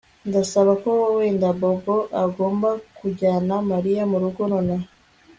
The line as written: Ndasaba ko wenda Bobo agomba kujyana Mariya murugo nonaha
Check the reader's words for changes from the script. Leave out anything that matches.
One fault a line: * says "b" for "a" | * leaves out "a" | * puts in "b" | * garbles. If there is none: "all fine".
all fine